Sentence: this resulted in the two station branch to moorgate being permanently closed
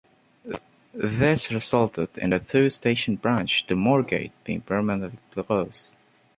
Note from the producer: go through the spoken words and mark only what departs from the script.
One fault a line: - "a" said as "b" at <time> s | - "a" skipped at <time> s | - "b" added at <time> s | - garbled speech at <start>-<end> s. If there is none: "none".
none